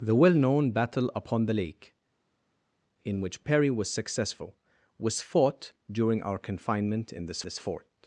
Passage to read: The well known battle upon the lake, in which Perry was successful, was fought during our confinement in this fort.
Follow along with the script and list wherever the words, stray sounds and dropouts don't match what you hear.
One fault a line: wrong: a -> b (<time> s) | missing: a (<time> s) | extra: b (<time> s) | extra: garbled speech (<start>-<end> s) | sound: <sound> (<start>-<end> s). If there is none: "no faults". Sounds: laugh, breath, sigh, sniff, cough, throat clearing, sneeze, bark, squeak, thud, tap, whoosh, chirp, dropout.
extra: this (7.4 s)